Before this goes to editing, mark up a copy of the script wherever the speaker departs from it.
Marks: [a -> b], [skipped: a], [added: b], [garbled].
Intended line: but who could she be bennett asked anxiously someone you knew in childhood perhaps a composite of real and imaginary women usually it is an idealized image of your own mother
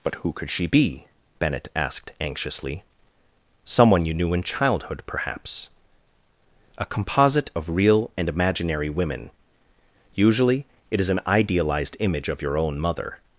but who could she be bennett asked anxiously someone you knew in childhood perhaps a composite of real and imaginary women usually it is an idealized image of your own mother